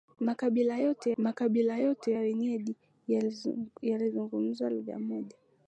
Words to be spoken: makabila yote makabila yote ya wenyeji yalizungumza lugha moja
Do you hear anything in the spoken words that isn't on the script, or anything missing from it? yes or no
no